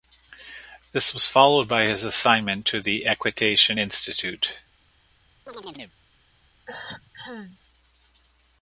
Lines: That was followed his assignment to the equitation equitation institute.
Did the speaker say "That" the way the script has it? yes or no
no